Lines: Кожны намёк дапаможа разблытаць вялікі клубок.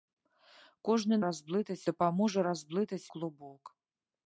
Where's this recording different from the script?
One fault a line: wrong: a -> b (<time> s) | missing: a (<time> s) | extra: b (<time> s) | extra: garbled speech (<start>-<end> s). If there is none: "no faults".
wrong: намёк -> разблытаць (1.3 s)
missing: вялікі (3.1 s)